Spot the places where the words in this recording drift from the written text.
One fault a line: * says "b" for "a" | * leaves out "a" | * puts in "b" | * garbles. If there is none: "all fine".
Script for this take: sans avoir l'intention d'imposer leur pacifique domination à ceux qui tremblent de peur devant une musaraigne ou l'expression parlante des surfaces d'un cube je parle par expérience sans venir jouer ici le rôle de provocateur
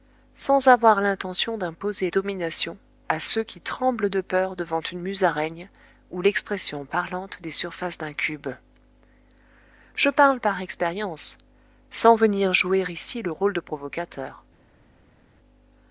* leaves out "leur pacifique"